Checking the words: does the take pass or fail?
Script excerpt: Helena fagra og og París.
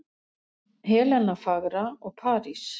fail